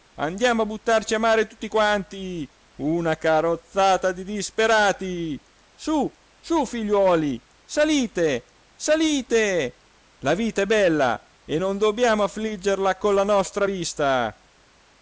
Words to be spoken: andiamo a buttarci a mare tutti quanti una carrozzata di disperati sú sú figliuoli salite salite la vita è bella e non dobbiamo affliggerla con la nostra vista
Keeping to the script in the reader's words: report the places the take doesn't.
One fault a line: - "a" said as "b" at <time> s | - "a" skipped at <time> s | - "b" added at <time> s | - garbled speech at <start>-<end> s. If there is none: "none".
none